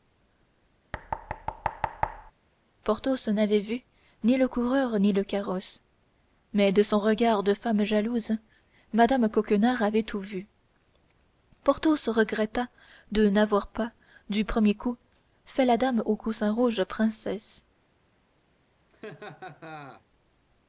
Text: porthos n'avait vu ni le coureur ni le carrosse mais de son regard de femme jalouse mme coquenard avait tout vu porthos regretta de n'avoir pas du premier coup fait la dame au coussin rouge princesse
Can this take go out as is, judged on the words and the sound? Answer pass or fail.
fail